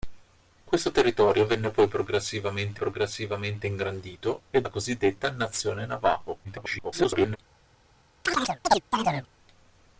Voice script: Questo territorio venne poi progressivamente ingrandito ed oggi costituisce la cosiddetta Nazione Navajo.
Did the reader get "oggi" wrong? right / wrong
wrong